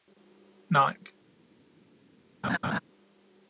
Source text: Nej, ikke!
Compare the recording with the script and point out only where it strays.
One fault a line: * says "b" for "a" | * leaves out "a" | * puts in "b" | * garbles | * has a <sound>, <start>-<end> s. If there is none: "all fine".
* has a laugh, 2.4-2.8 s